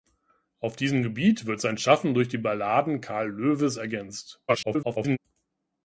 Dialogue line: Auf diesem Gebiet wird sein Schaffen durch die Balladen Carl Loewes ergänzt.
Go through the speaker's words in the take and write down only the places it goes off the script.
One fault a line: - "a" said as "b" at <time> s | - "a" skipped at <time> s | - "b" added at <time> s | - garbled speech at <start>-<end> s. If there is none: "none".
- garbled speech at 4.5-5.2 s